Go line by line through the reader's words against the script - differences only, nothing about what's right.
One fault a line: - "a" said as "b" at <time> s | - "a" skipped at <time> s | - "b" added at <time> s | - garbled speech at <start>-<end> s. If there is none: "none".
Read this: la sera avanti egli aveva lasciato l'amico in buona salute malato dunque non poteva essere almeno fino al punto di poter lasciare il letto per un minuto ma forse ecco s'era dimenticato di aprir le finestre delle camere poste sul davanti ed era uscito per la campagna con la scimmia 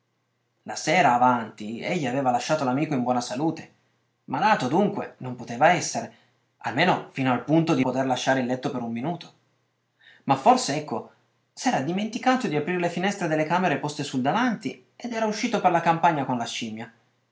none